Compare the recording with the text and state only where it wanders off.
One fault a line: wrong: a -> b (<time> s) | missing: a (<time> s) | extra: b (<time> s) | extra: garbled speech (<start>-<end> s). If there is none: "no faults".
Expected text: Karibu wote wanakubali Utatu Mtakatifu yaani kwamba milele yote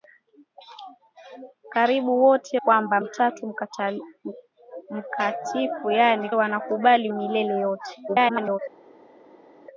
wrong: wanakubali -> kwamba (2.5 s)
wrong: kwamba -> wanakubali (6.3 s)
extra: garbled speech (8.1-8.6 s)